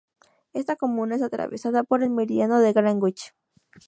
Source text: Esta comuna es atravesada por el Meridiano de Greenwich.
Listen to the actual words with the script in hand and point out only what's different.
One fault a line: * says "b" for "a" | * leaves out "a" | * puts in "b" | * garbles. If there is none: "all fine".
all fine